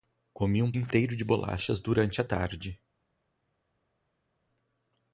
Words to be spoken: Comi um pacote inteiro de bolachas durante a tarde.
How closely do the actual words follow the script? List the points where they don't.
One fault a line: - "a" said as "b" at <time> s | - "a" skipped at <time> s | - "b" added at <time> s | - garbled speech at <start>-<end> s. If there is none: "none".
- "pacote" skipped at 0.7 s